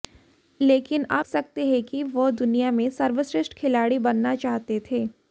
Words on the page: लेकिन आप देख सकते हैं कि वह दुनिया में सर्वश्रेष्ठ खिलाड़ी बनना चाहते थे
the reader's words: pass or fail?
fail